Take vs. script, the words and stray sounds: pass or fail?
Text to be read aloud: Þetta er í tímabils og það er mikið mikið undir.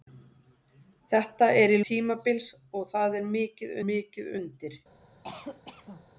fail